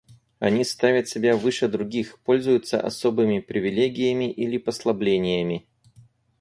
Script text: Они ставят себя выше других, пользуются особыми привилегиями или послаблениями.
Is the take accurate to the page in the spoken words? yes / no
yes